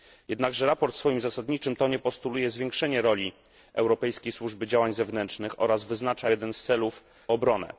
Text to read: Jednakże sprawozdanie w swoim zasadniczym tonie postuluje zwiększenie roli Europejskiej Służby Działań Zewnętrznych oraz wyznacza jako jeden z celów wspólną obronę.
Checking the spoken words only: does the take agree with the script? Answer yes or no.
no